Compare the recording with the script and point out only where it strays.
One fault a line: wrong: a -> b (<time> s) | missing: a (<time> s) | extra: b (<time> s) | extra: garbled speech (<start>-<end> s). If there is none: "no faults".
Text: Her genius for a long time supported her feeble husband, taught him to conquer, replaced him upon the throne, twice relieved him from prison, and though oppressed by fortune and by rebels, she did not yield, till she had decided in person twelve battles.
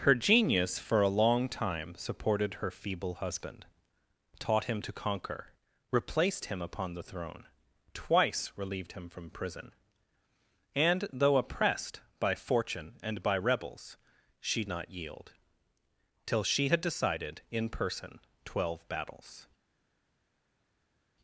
missing: did (14.6 s)